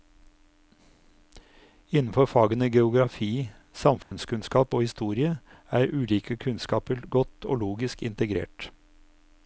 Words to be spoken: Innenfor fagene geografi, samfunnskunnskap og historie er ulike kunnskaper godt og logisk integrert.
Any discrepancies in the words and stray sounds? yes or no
yes